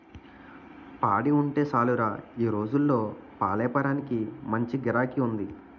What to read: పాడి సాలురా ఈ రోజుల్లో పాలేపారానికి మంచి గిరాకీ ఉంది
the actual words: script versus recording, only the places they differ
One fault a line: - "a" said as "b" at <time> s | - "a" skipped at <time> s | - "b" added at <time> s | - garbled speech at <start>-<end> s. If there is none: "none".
- "ఉంటే" added at 1.4 s